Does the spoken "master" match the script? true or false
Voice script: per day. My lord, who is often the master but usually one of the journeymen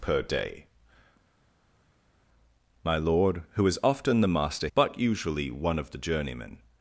true